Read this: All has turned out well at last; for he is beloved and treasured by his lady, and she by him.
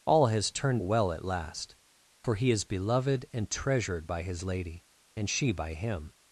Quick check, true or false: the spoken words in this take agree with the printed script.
false